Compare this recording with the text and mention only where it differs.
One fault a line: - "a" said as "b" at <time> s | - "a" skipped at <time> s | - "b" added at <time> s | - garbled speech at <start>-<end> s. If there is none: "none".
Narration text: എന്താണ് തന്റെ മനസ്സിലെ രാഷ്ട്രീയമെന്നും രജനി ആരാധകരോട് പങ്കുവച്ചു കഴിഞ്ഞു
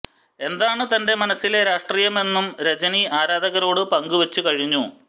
none